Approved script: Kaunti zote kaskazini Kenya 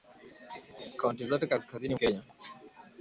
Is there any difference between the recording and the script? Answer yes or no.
no